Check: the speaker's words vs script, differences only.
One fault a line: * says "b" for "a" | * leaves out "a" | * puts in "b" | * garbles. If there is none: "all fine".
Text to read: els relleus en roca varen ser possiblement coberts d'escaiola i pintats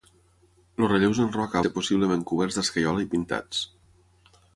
* leaves out "varen"